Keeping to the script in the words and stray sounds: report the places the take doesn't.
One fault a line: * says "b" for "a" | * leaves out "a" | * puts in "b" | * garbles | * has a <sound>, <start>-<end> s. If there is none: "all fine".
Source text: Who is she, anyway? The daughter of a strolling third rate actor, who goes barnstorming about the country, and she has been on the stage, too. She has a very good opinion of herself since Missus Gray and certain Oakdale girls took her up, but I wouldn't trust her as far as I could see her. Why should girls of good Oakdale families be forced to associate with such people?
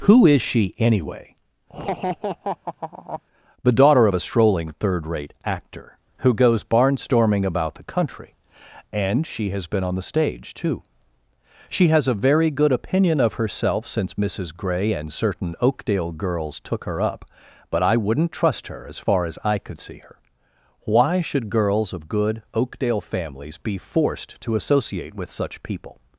* has a laugh, 1.7-3.2 s